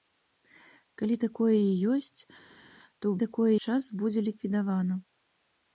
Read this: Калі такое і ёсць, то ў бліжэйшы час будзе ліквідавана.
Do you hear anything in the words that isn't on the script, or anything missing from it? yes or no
yes